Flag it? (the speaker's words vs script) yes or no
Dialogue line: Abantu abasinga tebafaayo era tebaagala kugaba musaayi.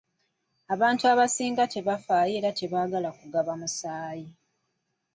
no